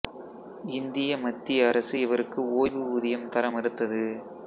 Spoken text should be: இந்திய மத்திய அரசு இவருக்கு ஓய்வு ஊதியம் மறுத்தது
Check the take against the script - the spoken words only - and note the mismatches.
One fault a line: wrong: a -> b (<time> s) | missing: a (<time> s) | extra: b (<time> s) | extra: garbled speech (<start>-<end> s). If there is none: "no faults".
extra: தர (3.3 s)